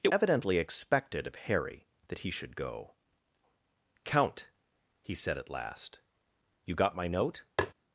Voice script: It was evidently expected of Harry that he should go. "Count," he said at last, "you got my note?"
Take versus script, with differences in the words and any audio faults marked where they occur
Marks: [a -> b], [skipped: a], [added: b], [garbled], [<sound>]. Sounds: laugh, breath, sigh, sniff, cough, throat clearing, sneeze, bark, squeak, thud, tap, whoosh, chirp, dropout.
It [skipped: was] evidently expected of Harry that he should go. "Count," he said at last, "you got my note?" [tap]